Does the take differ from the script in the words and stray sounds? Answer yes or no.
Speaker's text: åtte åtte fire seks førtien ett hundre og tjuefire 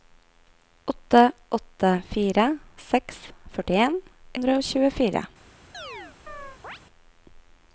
yes